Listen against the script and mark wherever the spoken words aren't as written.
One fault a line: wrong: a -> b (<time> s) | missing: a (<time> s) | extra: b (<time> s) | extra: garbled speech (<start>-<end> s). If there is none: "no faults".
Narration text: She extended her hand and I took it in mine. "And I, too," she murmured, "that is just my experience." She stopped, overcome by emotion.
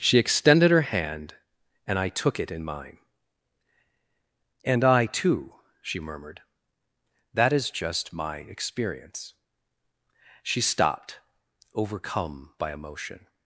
no faults